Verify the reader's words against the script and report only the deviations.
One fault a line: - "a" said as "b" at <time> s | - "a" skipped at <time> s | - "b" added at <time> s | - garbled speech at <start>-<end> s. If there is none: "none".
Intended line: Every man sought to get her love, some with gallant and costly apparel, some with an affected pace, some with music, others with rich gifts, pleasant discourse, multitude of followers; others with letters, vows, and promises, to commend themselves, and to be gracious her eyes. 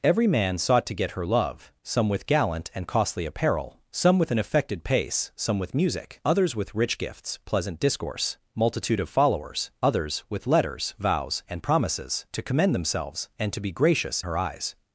none